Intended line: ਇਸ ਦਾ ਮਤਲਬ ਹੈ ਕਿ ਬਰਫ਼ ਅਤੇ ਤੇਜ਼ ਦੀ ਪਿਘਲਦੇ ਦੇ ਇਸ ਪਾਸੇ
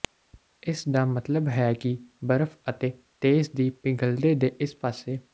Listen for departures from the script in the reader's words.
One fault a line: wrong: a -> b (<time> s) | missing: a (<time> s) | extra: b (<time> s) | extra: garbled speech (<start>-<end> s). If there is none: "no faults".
no faults